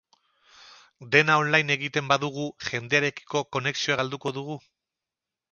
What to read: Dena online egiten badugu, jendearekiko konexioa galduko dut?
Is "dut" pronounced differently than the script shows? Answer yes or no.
yes